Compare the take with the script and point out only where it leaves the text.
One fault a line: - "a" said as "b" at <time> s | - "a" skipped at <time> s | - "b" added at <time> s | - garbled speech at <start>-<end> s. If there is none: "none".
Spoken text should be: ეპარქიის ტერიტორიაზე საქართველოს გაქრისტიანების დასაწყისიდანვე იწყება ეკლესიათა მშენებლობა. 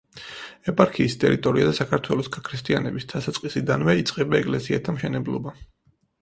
none